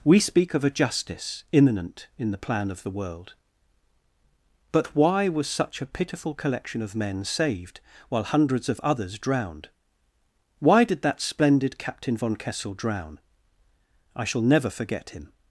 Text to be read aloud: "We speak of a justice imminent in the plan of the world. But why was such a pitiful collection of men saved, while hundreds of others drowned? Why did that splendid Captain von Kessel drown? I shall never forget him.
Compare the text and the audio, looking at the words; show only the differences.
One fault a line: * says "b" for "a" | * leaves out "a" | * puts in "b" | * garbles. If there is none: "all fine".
all fine